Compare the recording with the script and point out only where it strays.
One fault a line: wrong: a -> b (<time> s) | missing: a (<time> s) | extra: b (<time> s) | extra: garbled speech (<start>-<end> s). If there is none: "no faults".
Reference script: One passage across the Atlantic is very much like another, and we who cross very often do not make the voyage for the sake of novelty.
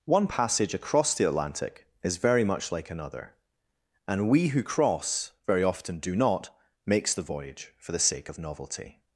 wrong: make -> makes (6.9 s)